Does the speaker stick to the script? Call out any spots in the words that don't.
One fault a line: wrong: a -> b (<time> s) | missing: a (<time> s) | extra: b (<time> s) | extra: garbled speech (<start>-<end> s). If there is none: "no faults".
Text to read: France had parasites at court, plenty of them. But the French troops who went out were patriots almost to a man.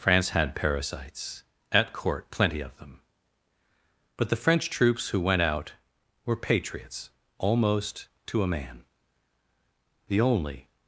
extra: The only (10.1 s)